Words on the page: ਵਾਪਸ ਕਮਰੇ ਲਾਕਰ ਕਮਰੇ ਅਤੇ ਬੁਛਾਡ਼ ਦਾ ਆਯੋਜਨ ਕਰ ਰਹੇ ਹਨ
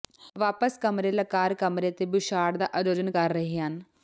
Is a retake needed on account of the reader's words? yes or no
no